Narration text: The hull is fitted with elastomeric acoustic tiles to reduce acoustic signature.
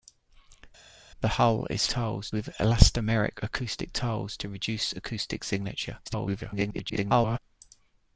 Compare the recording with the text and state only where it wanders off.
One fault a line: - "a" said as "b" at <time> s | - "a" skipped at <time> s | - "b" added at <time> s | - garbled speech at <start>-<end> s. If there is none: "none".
- "fitted" said as "tiles" at 1.9 s
- garbled speech at 6.1-7.4 s